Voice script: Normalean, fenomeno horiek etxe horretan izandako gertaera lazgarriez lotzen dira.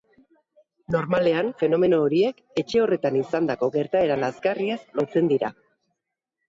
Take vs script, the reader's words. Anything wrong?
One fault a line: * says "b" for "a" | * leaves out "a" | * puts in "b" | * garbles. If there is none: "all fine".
all fine